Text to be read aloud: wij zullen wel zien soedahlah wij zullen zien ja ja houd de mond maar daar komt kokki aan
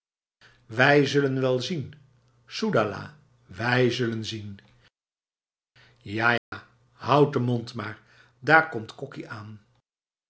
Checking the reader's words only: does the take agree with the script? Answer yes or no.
yes